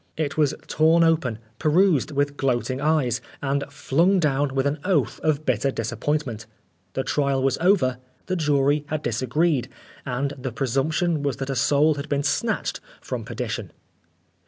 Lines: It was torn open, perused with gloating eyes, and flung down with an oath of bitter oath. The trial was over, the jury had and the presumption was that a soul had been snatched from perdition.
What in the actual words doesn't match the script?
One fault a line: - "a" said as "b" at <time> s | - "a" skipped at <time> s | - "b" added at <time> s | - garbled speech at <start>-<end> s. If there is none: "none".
- "oath" said as "disappointment" at 5.7 s
- "disagreed" added at 9.0 s